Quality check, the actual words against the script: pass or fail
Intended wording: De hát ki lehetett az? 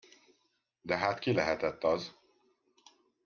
pass